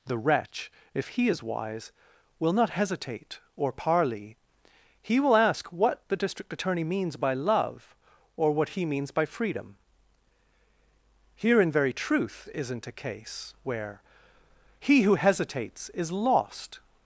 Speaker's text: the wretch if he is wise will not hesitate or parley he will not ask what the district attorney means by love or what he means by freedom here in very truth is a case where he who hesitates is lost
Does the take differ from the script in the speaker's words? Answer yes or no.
yes